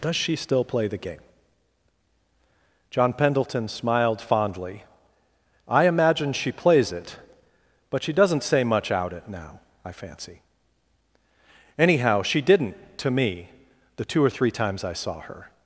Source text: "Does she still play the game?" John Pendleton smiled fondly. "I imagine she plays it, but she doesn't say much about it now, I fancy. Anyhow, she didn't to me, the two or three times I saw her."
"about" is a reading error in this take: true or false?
true